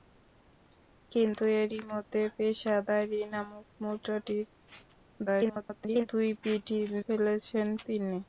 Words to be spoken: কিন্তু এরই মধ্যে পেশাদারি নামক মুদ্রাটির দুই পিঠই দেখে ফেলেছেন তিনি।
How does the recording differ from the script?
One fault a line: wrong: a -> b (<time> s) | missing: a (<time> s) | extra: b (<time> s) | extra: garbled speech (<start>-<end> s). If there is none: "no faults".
extra: garbled speech (5.3-6.1 s)
missing: দেখে (6.8 s)